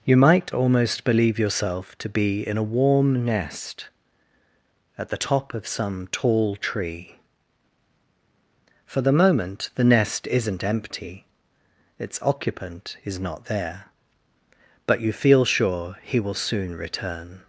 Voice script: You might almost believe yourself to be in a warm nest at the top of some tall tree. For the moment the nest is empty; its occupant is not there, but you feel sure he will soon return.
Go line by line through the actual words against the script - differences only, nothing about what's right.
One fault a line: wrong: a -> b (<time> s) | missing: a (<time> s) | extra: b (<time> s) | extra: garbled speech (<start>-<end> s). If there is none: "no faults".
wrong: is -> isn't (10.3 s)